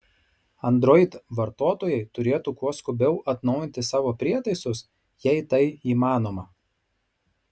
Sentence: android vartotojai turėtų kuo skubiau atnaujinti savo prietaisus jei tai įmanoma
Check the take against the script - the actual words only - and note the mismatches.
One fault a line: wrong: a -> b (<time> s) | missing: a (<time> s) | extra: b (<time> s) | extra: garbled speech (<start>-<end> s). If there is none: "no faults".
no faults